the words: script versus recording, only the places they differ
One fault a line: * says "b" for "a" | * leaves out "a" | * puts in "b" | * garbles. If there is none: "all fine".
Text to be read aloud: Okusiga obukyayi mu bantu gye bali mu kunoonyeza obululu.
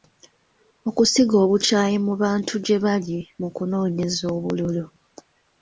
all fine